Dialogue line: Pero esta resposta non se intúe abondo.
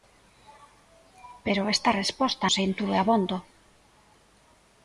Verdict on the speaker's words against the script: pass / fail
fail